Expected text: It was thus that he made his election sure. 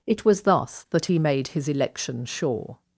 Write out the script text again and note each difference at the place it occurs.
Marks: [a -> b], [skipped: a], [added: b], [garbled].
It was thus that he made his election sure.